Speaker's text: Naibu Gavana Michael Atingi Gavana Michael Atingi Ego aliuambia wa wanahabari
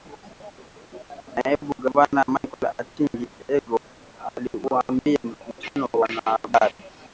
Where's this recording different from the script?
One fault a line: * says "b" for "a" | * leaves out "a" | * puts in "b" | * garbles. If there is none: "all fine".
* leaves out "Gavana Michael Atingi"
* puts in "mkutano"